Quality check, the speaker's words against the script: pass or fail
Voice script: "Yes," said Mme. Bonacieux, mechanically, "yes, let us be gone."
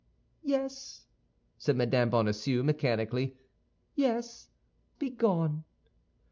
fail